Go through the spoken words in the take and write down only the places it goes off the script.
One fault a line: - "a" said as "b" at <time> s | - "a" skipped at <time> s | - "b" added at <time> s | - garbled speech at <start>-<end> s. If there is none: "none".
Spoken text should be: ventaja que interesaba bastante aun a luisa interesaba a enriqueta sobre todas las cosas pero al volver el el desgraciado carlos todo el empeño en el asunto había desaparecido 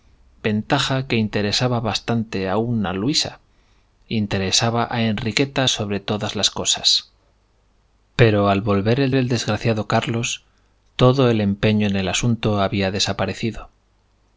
none